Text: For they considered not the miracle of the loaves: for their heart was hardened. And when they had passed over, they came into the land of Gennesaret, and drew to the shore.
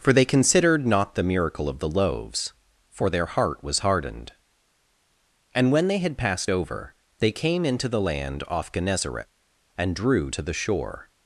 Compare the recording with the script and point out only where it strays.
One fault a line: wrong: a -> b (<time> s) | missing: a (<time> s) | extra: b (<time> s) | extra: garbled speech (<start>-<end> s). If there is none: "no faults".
wrong: of -> off (8.5 s)